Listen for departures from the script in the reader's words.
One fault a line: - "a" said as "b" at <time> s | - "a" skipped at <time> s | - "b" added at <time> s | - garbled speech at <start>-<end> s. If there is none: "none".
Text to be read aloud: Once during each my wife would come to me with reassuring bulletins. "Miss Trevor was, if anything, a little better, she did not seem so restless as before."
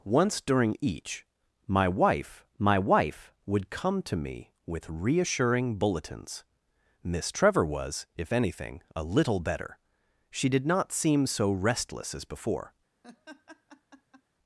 - "my wife" added at 2.6 s